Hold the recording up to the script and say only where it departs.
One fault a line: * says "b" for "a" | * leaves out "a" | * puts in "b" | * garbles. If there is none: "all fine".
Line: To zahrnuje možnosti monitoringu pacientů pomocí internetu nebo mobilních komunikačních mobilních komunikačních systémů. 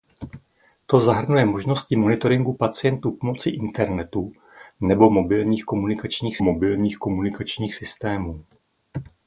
all fine